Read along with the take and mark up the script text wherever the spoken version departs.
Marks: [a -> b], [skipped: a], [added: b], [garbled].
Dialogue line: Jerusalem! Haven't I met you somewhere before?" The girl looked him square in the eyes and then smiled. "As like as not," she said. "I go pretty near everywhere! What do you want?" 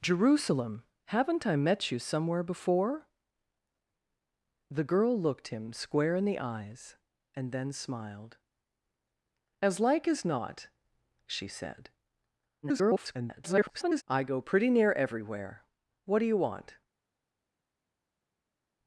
Jerusalem! Haven't I met you somewhere before?" The girl looked him square in the eyes and then smiled. "As like as not," she said. [garbled] "I go pretty near everywhere! What do you want?"